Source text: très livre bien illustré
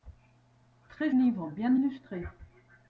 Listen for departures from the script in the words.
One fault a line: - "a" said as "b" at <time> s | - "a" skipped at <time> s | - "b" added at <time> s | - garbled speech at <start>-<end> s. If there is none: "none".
none